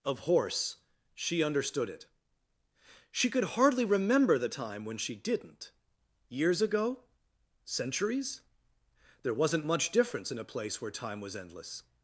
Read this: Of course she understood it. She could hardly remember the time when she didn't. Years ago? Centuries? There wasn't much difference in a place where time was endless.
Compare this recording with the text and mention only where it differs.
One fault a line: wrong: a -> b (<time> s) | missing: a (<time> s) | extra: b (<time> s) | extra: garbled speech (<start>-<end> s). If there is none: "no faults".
wrong: course -> horse (0.2 s)